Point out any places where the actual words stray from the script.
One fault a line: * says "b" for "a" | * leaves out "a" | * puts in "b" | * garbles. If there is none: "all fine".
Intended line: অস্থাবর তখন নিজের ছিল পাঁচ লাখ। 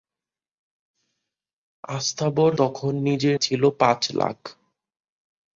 all fine